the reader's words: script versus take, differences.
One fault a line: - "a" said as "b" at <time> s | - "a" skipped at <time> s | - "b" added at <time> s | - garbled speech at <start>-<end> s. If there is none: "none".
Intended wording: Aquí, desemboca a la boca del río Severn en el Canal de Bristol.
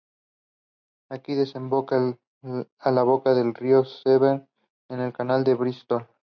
none